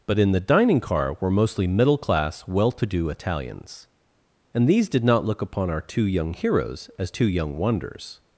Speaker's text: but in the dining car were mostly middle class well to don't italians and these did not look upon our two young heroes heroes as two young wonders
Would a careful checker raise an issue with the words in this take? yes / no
yes